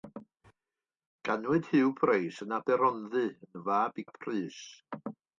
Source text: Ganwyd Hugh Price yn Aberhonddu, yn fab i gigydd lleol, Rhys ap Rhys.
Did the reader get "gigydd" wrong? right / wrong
wrong